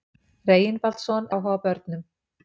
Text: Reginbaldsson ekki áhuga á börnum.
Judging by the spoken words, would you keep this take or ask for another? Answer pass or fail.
fail